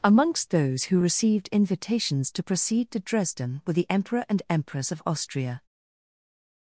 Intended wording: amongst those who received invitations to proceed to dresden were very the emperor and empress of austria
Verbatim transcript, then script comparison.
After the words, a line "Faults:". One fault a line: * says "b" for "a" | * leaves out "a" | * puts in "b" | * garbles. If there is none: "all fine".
amongst those who received invitations to proceed to dresden were the emperor and empress of austria
Faults:
* leaves out "very"